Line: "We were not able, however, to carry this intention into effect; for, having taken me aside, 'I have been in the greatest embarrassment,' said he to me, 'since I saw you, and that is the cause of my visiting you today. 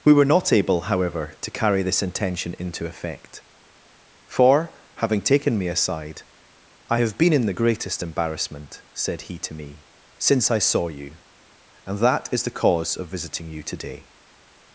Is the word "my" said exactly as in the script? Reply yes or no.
no